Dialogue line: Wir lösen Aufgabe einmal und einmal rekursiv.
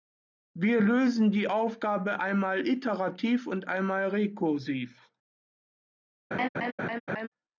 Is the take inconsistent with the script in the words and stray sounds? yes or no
yes